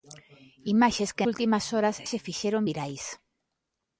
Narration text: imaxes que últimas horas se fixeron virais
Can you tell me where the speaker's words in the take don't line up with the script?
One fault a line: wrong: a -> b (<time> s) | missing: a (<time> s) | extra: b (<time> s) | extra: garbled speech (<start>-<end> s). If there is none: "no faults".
no faults